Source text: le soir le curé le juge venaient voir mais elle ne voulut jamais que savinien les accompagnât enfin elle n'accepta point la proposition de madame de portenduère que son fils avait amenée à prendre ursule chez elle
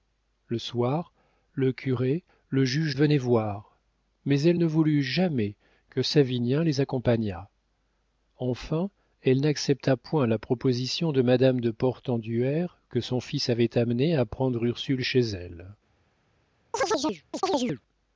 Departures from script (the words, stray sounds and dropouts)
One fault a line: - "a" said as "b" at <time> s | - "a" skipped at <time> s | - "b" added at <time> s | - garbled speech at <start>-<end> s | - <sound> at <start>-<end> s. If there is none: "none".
- chirp at 16.7-17.8 s